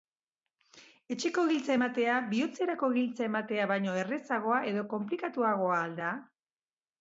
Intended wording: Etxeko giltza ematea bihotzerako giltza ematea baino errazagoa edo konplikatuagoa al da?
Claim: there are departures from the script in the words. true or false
false